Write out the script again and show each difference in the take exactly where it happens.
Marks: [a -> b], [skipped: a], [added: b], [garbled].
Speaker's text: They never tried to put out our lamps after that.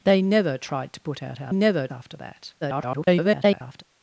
They never tried to put out our [lamps -> never] after that. [garbled]